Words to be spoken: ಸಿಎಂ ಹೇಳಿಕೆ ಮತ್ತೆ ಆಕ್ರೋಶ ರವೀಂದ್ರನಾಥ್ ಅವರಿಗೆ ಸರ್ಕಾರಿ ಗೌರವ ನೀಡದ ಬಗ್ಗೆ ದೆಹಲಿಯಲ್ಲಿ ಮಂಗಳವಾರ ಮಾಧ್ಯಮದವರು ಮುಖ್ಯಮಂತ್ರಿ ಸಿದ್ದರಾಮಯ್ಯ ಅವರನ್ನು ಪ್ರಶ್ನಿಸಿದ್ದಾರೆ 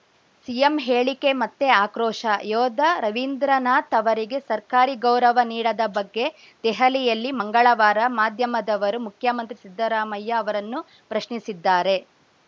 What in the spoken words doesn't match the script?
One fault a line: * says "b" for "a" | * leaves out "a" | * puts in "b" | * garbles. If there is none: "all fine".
* puts in "ಯೋಧ"